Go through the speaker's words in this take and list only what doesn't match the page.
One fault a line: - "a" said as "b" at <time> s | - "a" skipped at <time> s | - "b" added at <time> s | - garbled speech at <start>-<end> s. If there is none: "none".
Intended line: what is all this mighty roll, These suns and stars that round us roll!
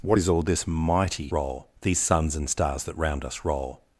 none